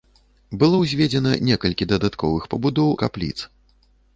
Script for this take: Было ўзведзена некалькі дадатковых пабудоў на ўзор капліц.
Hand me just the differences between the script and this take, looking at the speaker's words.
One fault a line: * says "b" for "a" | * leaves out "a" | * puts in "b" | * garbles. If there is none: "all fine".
* leaves out "на ўзор"